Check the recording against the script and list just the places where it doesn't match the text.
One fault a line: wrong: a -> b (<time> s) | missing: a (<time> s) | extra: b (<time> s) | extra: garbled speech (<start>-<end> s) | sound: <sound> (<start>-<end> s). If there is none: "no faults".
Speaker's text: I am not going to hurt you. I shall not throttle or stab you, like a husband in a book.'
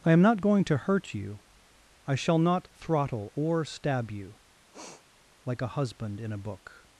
sound: sniff (4.7-5.0 s)